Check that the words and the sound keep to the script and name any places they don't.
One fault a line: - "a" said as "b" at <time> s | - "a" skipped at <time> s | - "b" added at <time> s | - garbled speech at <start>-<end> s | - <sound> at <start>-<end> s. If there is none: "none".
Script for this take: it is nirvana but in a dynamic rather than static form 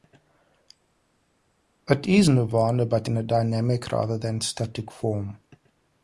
none